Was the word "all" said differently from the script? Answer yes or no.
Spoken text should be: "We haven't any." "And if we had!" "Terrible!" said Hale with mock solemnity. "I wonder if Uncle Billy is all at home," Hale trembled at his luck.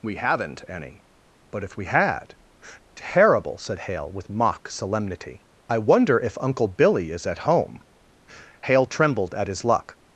yes